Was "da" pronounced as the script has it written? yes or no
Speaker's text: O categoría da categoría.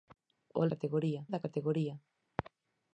yes